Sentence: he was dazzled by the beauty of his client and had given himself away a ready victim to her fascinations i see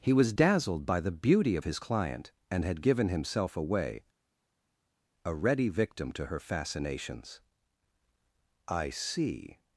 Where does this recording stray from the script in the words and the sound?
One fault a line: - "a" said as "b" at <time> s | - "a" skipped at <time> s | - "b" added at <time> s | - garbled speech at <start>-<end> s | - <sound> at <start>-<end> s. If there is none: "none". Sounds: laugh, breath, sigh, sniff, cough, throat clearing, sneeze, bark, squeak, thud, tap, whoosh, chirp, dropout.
none